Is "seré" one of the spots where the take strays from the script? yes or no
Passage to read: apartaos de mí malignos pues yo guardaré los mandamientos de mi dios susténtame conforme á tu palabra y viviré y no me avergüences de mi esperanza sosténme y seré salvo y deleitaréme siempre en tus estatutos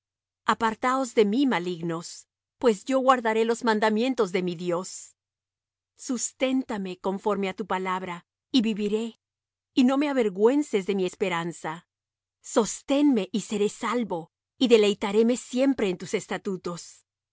no